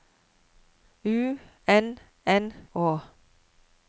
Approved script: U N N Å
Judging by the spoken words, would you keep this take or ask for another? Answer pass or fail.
pass